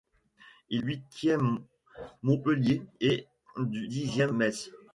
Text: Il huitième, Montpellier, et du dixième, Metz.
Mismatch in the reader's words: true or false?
false